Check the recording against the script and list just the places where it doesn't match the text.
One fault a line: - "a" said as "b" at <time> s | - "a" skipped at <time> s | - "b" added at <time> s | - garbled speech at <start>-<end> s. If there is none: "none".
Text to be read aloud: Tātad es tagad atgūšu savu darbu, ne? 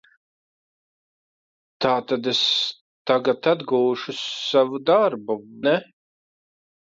none